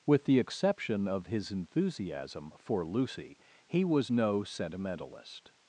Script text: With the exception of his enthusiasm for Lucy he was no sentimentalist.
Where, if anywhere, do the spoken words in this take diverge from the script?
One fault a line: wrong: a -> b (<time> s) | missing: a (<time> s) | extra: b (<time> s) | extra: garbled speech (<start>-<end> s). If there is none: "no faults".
no faults